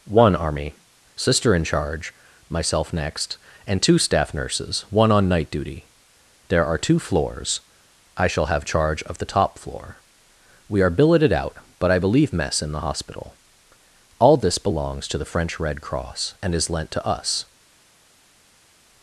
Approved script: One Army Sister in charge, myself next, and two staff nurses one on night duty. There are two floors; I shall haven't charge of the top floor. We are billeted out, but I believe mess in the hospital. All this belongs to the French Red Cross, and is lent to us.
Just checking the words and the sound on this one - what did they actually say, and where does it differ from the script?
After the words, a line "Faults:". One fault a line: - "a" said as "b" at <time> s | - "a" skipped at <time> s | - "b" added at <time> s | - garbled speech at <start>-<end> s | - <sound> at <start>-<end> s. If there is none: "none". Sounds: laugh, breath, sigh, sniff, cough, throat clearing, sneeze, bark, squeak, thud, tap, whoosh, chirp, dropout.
One Army Sister in charge, myself next, and two staff nurses one on night duty. There are two floors; I shall have charge of the top floor. We are billeted out, but I believe mess in the hospital. All this belongs to the French Red Cross, and is lent to us.
Faults:
- "haven't" said as "have" at 8.5 s